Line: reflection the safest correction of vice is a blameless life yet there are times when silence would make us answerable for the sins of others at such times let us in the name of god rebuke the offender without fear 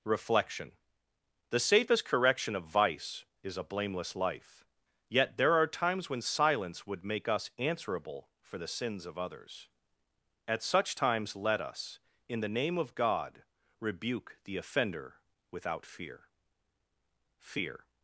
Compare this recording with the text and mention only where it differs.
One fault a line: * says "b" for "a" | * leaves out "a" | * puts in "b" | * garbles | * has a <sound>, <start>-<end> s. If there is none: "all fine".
* puts in "fear"